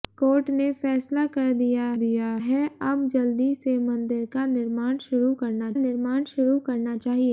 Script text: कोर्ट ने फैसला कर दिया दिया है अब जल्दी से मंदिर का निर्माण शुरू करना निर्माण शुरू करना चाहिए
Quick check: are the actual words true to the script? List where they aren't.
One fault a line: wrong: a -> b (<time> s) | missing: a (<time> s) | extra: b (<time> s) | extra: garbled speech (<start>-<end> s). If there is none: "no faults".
no faults